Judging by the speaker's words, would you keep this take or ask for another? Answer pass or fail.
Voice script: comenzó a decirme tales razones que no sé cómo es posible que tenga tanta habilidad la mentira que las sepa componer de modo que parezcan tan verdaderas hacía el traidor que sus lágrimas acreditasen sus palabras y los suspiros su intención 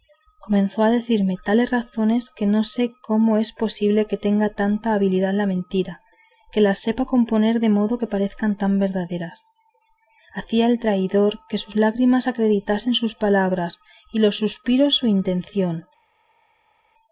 pass